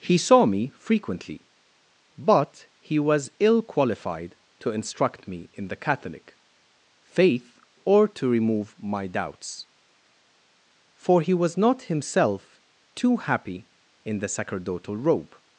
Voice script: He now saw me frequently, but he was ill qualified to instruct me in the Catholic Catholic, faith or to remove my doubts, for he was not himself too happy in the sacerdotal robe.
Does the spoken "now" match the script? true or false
false